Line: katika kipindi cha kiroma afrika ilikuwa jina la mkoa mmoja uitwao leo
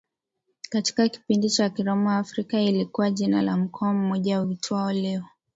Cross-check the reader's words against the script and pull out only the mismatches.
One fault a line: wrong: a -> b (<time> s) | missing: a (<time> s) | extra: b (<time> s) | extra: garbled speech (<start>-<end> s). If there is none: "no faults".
no faults